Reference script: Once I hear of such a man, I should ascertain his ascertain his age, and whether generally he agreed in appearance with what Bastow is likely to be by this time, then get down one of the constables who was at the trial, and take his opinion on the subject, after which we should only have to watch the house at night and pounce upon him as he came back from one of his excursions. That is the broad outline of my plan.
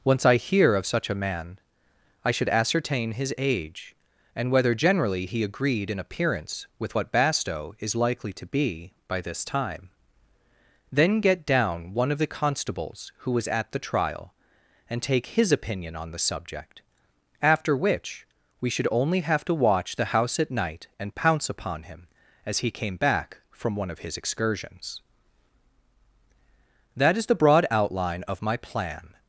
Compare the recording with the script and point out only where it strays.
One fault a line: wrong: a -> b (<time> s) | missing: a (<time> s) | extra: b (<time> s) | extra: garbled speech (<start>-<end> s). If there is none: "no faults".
missing: ascertain his (3.3 s)